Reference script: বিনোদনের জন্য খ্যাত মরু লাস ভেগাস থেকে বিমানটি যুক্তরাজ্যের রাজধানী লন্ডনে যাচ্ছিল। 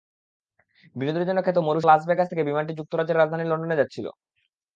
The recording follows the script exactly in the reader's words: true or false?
true